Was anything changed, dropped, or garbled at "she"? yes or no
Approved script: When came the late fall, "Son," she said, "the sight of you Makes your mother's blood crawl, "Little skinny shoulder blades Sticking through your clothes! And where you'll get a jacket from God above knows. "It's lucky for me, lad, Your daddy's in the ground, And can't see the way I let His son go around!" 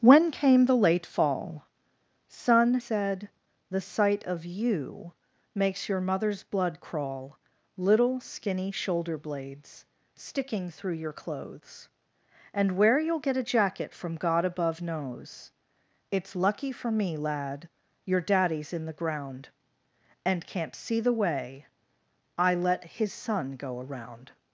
yes